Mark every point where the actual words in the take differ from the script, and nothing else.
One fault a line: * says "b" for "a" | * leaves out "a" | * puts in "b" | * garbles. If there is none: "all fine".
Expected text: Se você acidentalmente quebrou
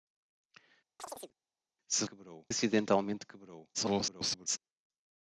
* says "quebrou" for "você"
* garbles